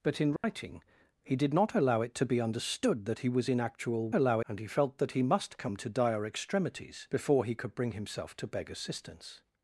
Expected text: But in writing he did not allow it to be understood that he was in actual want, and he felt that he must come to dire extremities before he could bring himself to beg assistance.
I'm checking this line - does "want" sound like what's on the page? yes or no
no